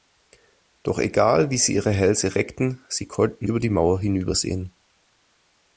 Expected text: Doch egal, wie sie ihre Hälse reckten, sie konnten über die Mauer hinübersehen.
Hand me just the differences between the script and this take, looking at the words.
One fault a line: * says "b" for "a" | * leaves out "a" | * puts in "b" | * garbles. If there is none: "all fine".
all fine